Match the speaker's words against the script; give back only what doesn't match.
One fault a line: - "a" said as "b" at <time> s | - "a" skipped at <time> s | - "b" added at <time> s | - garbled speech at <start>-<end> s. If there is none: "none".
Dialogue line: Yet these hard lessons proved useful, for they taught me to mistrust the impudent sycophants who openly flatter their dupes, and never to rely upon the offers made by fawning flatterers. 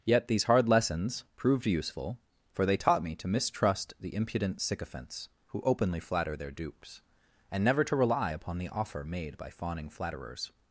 - "offers" said as "offer" at 8.7 s